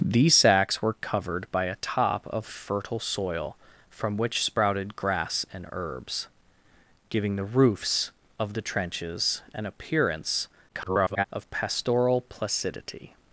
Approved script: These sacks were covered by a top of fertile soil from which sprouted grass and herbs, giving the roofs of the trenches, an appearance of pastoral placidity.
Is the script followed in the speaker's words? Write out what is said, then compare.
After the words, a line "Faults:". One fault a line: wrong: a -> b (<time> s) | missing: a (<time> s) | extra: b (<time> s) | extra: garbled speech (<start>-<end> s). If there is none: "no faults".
These sacks were covered by a top of fertile soil from which sprouted grass and herbs, giving the roofs of the trenches, an appearance [garbled] of pastoral placidity.
Faults:
extra: garbled speech (10.7-11.2 s)